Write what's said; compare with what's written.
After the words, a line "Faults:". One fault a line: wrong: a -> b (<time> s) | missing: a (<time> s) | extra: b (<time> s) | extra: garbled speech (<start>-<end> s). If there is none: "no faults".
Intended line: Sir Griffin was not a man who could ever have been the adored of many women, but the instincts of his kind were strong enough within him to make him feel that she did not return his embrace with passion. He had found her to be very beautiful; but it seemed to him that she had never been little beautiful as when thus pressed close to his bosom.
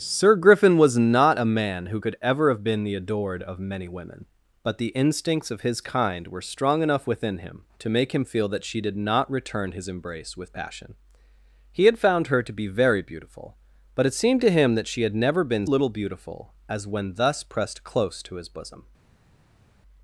Sir Griffin was not a man who could ever have been the adored of many women, but the instincts of his kind were strong enough within him to make him feel that she did not return his embrace with passion. He had found her to be very beautiful; but it seemed to him that she had never been little beautiful as when thus pressed close to his bosom.
Faults:
no faults